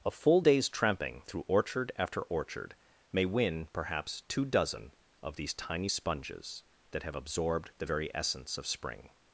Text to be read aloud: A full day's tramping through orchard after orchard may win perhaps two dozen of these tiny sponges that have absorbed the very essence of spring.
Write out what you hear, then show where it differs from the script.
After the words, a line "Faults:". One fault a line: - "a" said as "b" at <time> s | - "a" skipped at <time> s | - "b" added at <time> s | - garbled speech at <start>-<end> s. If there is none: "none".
A full day's tramping through orchard after orchard may win perhaps two dozen of these tiny sponges that have absorbed the very essence of spring.
Faults:
none